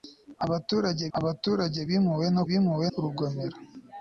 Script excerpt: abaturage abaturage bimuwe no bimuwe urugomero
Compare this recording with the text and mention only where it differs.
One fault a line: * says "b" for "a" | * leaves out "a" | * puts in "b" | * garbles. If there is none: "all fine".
all fine